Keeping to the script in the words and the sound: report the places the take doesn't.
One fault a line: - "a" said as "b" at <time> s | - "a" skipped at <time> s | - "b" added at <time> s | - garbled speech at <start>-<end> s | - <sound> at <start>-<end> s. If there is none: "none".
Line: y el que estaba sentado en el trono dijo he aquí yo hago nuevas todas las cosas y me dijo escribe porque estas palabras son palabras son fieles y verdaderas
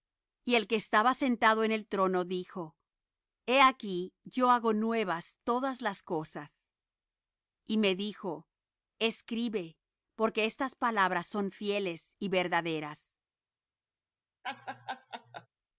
- "palabras son" skipped at 11.5 s
- laugh at 14.4-15.5 s